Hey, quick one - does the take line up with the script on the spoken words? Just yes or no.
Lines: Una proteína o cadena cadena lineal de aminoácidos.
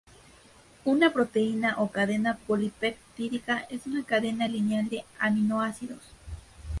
no